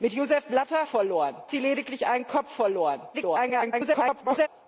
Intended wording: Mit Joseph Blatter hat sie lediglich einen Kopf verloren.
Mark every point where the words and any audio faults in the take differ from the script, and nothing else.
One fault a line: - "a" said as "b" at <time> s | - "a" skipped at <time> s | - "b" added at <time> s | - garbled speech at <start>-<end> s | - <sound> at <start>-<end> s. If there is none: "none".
- "hat" said as "verloren" at 0.9 s
- garbled speech at 3.1-4.5 s